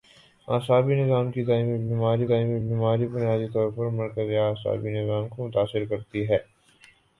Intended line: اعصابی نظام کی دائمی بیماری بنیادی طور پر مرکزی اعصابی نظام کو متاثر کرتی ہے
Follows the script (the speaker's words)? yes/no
no